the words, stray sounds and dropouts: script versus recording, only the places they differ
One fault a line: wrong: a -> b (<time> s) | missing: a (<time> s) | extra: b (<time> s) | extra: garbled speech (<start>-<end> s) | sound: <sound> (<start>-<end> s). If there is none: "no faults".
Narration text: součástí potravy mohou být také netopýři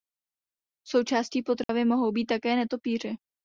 sound: dropout (1.6-1.7 s)